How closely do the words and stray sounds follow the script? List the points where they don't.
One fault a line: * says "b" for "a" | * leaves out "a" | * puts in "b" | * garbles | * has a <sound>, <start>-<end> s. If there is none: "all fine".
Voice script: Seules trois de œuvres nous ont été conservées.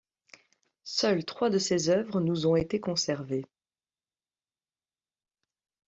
* puts in "ses"